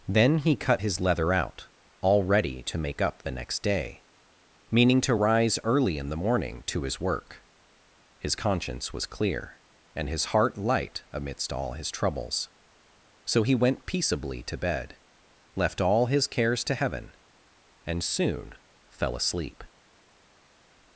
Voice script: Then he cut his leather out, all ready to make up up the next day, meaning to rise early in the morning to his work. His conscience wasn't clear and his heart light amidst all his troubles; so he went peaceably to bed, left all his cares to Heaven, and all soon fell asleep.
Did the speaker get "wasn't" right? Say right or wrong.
wrong